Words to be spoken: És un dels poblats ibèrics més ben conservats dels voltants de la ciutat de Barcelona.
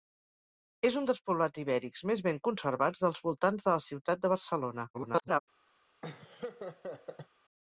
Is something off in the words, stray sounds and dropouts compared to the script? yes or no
yes